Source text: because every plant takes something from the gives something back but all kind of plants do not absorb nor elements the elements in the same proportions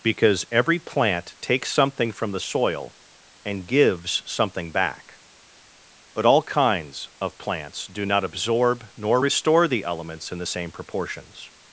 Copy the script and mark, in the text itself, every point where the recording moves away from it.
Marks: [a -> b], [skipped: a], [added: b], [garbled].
because every plant takes something from the [added: soil and] gives something back but all [kind -> kinds] of plants do not absorb nor [elements -> restore] the elements in the same proportions